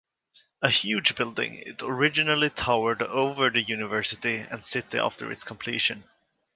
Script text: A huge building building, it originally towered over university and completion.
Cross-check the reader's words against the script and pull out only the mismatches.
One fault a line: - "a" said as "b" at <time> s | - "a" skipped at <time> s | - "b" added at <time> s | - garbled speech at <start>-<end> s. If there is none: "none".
- "building" skipped at 1.6 s
- "the" added at 3.5 s
- "city after its" added at 4.6 s